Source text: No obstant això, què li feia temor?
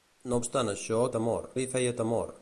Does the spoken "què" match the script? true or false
false